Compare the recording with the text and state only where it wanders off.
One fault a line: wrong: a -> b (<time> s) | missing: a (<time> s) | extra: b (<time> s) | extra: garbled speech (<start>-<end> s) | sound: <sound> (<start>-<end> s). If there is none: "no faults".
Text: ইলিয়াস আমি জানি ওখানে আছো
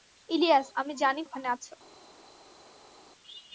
no faults